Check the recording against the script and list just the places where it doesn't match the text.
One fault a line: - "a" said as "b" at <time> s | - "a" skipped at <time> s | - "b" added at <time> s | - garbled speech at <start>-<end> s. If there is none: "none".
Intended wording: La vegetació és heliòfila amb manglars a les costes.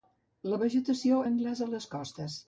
- "és heliòfila amb" skipped at 1.2 s